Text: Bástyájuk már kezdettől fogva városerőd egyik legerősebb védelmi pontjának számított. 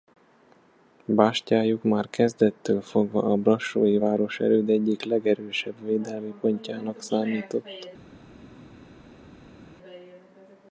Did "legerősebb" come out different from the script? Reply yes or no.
no